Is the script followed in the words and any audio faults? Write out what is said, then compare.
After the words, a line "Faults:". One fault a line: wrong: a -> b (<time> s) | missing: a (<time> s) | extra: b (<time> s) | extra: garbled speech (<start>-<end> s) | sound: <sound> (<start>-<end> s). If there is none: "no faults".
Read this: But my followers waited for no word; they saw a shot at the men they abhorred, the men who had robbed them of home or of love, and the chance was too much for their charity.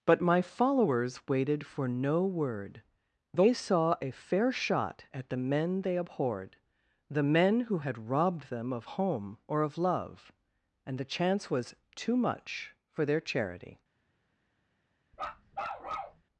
But my followers waited for no word; they saw a fair shot at the men they abhorred, the men who had robbed them of home or of love, and the chance was too much for their charity.
Faults:
extra: fair (4.1 s)
sound: bark (15.1-16.2 s)